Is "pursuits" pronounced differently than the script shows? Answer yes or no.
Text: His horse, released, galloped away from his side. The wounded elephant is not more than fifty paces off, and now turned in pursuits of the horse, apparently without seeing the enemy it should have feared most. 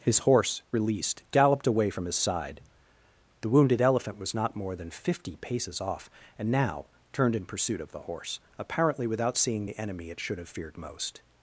yes